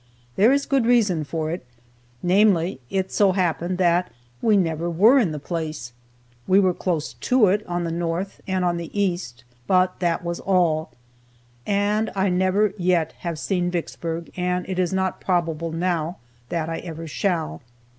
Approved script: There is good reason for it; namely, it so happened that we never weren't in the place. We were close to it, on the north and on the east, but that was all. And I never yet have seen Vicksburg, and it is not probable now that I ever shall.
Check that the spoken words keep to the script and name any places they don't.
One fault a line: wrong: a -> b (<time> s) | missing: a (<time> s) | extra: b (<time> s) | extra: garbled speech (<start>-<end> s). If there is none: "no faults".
wrong: weren't -> were (4.9 s)